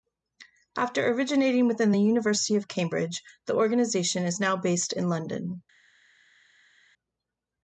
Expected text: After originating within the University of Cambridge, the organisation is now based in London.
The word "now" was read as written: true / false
true